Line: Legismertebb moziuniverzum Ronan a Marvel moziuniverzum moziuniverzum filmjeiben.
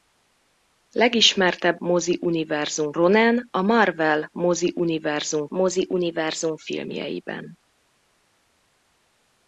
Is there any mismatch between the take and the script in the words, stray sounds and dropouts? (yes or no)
no